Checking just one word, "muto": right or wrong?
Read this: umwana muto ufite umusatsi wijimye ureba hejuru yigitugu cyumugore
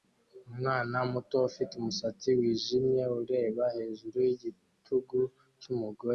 right